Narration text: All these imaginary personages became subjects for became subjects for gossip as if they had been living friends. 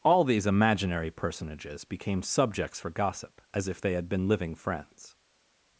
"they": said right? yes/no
yes